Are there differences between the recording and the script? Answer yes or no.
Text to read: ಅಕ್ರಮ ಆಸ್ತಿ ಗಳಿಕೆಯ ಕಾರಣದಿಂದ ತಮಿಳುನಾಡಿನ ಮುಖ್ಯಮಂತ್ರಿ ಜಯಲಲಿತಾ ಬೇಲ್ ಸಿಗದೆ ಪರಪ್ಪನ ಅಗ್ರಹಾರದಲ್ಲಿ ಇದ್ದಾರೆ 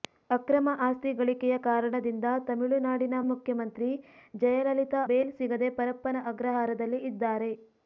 no